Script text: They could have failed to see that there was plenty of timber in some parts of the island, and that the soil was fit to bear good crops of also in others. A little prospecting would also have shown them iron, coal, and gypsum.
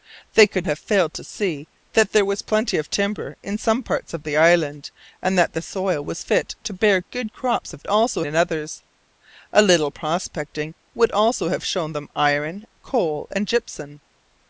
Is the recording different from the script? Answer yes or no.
no